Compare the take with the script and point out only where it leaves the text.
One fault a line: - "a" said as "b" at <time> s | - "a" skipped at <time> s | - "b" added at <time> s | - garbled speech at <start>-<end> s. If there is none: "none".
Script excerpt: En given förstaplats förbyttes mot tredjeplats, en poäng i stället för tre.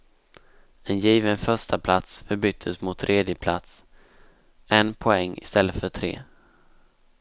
none